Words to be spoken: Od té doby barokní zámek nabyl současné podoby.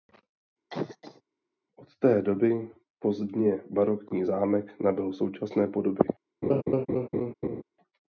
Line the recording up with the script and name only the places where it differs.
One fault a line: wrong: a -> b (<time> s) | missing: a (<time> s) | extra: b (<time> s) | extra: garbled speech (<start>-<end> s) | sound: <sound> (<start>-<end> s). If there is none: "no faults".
sound: cough (0.7-1.2 s)
extra: pozdně (3.0 s)
sound: laugh (6.4-7.6 s)